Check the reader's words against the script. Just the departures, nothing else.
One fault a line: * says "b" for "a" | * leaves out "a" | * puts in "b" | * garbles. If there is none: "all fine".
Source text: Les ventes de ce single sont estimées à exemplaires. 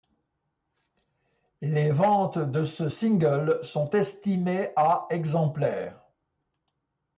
all fine